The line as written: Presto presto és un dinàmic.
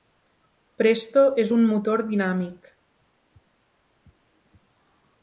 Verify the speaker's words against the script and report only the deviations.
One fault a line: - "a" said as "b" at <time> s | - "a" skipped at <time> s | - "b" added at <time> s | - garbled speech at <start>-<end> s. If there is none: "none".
- "presto" skipped at 1.2 s
- "motor" added at 1.7 s